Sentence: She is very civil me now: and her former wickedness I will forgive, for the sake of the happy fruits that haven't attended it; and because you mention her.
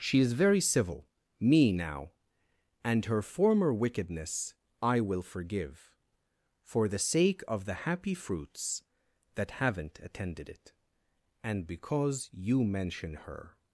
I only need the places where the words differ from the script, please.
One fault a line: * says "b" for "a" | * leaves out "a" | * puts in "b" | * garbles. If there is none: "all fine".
all fine